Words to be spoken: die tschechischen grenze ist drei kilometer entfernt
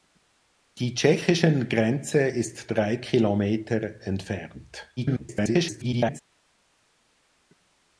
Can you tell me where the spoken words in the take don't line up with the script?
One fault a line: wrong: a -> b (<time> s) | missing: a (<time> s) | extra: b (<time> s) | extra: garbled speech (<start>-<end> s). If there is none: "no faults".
extra: garbled speech (5.0-6.2 s)